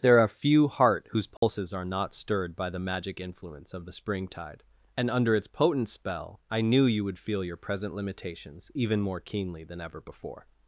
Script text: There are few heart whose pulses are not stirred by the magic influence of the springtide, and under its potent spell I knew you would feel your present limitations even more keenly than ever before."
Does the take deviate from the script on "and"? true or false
false